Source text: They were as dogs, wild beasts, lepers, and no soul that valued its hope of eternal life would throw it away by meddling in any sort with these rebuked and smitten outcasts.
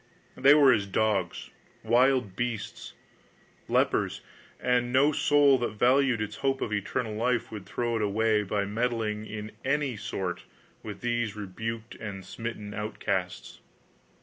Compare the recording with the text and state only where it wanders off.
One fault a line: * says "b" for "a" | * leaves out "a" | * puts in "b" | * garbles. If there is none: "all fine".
all fine